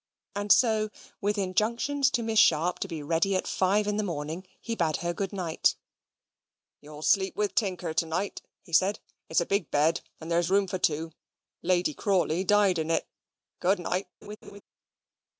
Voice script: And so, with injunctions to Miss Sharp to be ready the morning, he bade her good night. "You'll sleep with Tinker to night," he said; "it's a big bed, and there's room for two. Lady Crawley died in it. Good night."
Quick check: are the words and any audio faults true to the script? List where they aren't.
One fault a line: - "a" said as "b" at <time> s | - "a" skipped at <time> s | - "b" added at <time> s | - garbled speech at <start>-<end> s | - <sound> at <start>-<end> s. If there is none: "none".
- "at five in" added at 3.4 s
- laugh at 14.2-14.6 s